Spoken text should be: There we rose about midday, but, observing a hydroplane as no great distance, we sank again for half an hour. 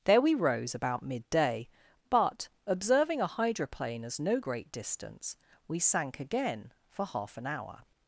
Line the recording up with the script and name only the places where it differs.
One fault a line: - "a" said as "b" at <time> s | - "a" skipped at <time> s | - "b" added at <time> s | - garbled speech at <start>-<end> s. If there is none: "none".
none